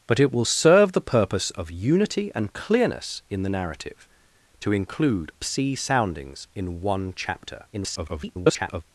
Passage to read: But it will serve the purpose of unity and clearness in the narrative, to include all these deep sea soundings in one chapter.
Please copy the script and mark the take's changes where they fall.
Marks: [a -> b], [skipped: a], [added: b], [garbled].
But it will serve the purpose of unity and clearness in the narrative, to include [skipped: all these deep] sea soundings in one chapter. [garbled]